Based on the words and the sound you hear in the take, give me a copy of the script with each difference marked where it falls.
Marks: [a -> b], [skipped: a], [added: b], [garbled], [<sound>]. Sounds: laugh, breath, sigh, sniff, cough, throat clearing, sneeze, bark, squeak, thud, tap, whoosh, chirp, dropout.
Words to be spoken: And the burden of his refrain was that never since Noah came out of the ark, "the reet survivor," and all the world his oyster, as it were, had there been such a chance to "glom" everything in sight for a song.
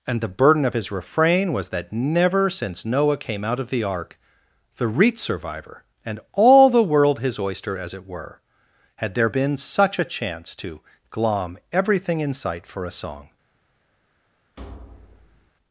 And the burden of his refrain was that never since Noah came out of the ark, "the reet survivor," and all the world his oyster, as it were, had there been such a chance to "glom" everything in sight for a song. [thud]